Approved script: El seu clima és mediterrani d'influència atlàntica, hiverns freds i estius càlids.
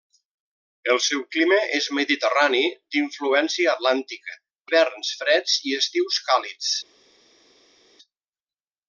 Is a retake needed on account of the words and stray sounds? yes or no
no